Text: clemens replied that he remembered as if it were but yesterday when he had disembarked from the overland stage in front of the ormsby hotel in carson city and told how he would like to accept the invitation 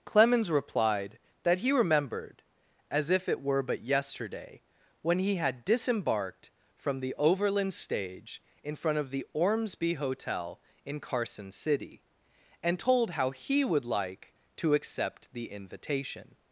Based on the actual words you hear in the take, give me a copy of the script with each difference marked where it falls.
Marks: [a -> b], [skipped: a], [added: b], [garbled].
clemens replied that he remembered as if it were but yesterday when he had disembarked from the overland stage in front of the ormsby hotel in carson city and told how he would like to accept the invitation